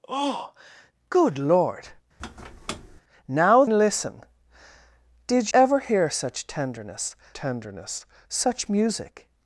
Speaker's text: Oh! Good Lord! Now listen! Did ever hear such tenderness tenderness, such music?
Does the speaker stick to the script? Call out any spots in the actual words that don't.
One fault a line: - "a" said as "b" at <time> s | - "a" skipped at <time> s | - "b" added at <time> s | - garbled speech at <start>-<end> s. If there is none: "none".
none